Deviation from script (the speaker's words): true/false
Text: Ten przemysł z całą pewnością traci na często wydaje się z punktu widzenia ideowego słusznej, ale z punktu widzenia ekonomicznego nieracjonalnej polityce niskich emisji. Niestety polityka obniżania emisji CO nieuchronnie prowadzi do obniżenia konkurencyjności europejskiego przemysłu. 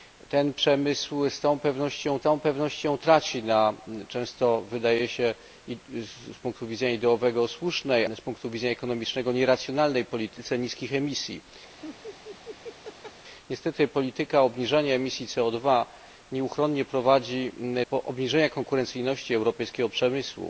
true